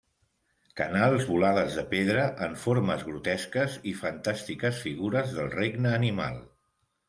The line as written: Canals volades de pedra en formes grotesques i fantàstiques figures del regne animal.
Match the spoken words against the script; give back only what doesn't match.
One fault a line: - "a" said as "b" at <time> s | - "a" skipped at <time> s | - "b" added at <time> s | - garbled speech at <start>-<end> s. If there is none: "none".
none